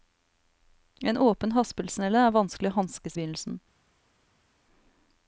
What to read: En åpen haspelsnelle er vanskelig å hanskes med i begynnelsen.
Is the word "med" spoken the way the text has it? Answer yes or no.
no